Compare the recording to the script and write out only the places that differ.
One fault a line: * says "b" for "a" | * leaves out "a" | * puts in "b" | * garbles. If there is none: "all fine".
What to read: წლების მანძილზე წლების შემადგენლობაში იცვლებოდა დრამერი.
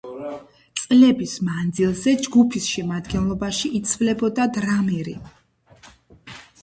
* says "ჯგუფის" for "წლების"